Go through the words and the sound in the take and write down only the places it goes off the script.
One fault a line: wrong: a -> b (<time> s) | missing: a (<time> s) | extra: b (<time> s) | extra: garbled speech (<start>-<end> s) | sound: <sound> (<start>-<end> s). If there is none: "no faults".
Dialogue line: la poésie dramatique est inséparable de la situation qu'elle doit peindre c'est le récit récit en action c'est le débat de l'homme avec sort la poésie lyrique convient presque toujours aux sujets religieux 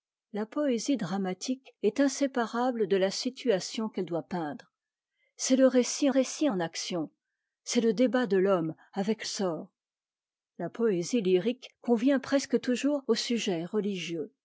no faults